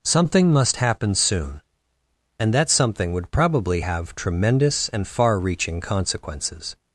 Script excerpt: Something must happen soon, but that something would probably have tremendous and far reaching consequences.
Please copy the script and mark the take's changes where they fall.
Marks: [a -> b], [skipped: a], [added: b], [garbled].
Something must happen soon, [but -> and] that something would probably have tremendous and far reaching consequences.